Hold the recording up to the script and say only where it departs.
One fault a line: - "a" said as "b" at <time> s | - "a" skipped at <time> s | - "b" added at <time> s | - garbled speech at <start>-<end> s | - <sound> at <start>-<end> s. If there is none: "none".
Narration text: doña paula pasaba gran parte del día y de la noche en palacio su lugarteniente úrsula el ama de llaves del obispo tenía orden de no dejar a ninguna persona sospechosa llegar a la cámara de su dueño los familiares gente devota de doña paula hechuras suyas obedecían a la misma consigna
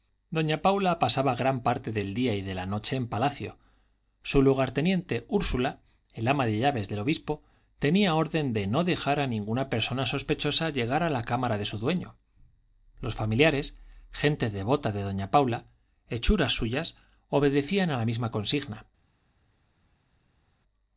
none